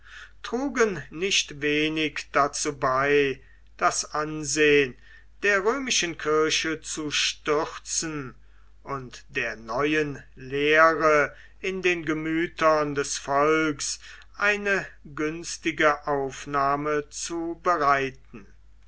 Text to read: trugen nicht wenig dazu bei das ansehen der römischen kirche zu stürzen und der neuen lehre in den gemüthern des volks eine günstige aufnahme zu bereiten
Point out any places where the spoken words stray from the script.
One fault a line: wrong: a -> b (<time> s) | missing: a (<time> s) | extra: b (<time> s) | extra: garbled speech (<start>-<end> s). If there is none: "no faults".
no faults